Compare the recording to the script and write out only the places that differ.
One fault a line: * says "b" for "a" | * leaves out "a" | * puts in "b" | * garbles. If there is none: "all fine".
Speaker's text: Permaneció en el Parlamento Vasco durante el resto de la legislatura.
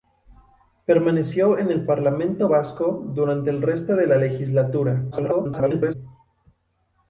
* garbles